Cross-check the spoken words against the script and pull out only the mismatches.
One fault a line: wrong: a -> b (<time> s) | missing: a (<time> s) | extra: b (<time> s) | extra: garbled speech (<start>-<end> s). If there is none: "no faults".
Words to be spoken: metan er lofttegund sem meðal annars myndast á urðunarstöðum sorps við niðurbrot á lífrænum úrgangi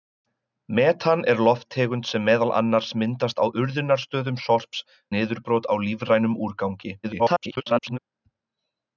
missing: við (4.8 s)
extra: garbled speech (7.0-8.0 s)